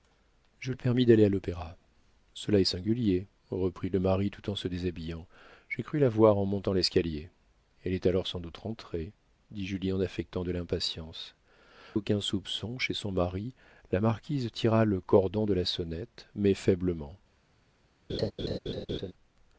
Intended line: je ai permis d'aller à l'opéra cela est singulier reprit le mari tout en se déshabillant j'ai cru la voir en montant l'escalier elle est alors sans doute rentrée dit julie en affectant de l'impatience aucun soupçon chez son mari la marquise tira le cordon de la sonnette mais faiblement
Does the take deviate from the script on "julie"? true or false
false